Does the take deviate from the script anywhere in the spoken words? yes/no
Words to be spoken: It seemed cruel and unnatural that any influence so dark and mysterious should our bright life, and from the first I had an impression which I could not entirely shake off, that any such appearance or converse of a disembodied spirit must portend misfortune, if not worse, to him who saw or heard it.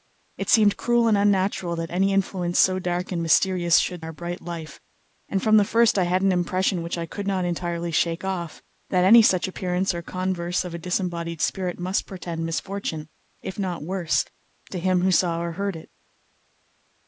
no